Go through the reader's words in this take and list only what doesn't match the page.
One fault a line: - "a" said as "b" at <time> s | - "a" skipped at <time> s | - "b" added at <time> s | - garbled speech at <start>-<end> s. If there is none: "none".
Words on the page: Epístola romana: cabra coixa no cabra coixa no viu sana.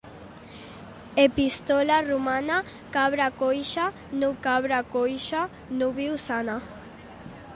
none